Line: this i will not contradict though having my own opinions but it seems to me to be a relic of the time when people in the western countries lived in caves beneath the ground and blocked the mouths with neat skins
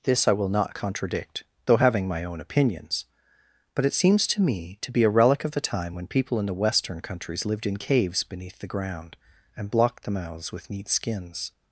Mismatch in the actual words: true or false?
false